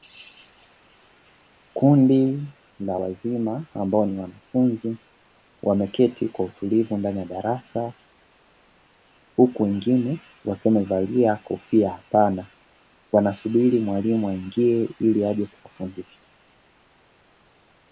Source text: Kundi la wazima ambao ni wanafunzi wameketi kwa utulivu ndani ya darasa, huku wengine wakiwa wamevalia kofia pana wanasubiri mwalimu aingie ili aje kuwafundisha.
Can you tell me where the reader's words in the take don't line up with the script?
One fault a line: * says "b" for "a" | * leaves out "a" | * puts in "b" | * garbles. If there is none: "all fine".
all fine